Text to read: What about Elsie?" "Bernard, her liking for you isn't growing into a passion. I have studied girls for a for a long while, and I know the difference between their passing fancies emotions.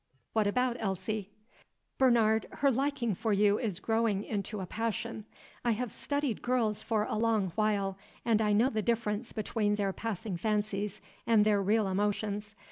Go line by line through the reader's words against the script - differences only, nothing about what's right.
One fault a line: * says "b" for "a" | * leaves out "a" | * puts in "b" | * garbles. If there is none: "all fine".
* says "is" for "isn't"
* leaves out "for a"
* puts in "and their real"